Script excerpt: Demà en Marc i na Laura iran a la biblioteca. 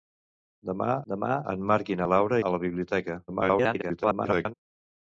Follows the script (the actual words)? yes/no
no